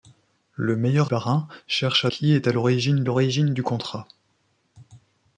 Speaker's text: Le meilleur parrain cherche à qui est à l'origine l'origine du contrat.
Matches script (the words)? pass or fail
pass